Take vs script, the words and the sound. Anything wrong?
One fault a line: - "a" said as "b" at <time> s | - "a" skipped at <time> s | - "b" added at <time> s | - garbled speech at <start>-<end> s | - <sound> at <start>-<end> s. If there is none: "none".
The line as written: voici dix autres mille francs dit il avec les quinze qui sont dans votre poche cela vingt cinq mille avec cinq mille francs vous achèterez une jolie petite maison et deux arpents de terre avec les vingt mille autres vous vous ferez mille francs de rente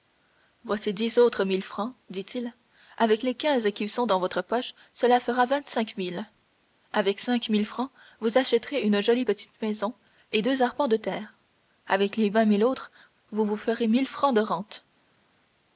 - "fera" added at 5.2 s